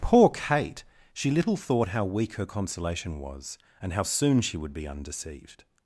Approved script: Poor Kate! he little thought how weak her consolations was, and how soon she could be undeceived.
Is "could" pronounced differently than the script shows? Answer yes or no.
yes